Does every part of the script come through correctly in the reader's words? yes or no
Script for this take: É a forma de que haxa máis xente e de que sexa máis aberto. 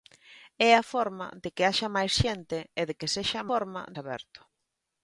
no